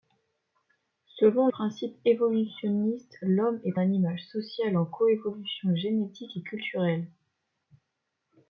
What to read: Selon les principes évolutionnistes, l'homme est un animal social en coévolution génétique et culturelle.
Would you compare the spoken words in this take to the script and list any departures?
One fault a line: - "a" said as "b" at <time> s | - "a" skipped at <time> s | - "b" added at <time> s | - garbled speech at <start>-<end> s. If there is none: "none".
- "les" skipped at 1.5 s
- "un" skipped at 3.8 s